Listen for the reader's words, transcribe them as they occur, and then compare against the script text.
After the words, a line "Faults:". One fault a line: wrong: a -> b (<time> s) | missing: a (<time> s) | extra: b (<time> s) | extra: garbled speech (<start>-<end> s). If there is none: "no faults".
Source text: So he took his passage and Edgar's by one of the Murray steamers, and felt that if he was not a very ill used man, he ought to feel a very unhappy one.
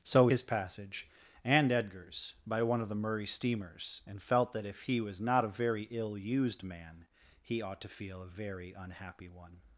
So his passage and Edgar's by one of the Murray steamers, and felt that if he was not a very ill used man, he ought to feel a very unhappy one.
Faults:
missing: he took (0.3 s)